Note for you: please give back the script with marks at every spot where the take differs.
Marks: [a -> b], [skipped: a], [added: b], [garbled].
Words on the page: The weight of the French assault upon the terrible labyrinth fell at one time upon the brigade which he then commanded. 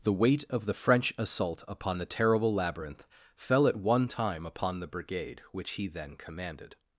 The weight of the French assault upon the terrible labyrinth fell at one time upon the brigade which he then commanded.